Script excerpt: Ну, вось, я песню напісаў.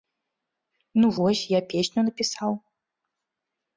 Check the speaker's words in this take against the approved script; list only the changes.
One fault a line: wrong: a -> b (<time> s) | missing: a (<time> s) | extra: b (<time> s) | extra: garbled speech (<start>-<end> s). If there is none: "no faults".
no faults